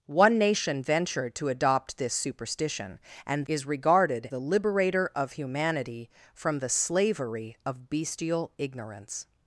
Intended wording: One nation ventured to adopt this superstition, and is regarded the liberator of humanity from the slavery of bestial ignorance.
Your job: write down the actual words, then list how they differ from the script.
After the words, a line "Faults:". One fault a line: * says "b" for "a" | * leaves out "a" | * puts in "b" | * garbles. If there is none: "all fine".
One nation ventured to adopt this superstition, and is regarded the liberator of humanity from the slavery of bestial ignorance.
Faults:
all fine